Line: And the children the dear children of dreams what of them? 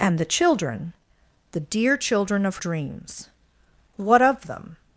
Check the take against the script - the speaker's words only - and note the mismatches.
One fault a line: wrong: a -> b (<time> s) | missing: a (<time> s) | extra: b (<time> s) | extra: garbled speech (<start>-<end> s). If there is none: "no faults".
no faults